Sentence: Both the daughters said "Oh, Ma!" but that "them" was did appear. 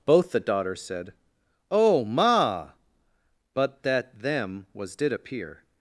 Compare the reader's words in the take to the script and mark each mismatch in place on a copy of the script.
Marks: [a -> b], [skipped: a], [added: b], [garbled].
Both the daughters said "Oh, Ma!" but that "them" was did appear.